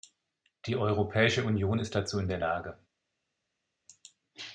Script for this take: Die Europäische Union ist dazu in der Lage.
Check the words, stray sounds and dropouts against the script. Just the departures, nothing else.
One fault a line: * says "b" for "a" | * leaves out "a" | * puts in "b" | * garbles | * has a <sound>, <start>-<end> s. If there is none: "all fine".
all fine